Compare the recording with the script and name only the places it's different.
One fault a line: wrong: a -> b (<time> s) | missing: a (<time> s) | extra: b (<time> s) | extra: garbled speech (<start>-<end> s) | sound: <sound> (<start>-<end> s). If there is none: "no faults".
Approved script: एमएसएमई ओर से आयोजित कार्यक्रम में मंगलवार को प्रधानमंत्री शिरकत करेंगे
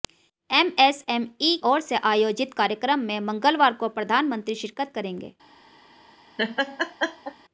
sound: laugh (6.4-7.4 s)